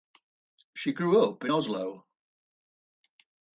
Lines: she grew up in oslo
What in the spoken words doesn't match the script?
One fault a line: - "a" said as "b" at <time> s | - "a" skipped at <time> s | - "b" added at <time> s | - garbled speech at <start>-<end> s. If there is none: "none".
none